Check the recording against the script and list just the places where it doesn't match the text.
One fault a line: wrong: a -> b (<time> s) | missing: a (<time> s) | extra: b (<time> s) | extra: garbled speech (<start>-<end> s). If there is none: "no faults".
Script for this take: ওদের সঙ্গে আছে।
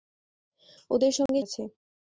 no faults